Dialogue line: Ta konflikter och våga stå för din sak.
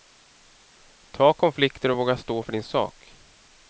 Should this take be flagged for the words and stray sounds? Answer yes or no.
no